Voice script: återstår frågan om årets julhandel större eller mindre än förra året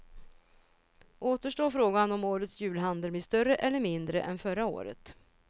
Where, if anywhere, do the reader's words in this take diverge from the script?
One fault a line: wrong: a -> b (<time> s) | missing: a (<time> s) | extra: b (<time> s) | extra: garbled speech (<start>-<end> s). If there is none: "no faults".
extra: blir (3.1 s)